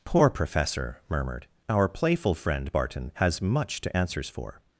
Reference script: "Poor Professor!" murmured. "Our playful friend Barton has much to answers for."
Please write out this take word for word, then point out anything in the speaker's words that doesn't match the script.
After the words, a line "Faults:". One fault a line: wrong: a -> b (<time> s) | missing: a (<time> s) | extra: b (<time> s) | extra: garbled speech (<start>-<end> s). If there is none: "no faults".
"Poor Professor!" murmured. "Our playful friend Barton has much to answers for."
Faults:
no faults